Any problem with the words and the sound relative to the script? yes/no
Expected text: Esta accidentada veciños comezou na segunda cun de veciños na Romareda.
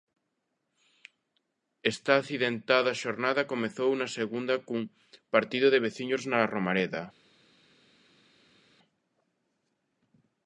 yes